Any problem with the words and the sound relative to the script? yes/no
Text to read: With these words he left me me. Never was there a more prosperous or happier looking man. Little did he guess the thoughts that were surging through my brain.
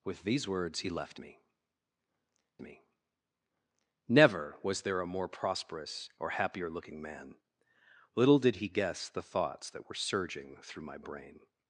no